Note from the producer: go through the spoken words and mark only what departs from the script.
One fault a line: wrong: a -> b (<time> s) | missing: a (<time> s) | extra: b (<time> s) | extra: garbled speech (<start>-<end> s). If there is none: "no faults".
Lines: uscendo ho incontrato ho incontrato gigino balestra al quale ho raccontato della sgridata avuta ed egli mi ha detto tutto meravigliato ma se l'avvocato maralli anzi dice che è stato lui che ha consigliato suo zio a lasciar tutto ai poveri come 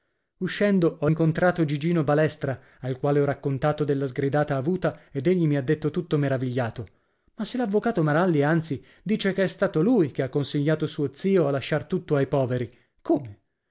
missing: ho incontrato (1.6 s)